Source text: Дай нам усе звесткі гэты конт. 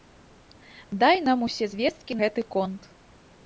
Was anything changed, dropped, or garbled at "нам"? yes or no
no